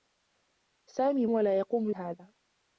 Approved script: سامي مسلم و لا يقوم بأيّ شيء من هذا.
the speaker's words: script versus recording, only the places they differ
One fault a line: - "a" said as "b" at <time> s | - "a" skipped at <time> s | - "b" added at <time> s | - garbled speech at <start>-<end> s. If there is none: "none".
- "مسلم" skipped at 1.2 s
- "بأيّ شيء من" skipped at 1.9 s